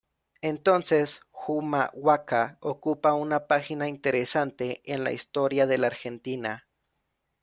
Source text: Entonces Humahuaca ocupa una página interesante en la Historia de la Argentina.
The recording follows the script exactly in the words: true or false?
true